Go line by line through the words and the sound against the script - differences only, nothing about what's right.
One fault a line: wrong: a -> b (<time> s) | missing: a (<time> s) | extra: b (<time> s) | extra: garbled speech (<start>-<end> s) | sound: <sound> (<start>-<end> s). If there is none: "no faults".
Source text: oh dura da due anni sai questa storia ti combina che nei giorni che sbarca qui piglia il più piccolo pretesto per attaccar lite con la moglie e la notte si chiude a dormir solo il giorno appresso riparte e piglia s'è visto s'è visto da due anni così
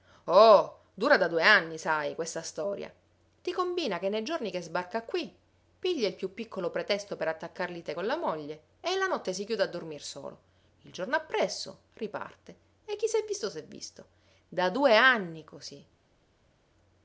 wrong: piglia -> chi (12.9 s)